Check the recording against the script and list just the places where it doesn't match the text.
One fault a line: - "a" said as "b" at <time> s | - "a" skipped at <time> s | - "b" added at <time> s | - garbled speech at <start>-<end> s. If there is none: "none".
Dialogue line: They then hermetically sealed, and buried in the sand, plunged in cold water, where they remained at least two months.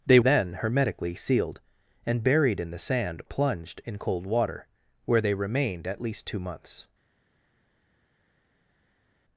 none